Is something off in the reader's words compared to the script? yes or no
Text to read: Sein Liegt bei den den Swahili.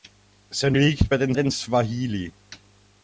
no